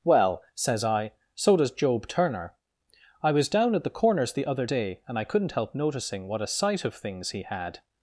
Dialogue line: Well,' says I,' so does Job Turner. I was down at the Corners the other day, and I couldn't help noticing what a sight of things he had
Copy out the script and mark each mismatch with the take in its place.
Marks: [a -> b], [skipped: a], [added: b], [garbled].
Well,' says I,' so does Job Turner. I was down at the Corners the other day, and I couldn't help noticing what a sight of things he had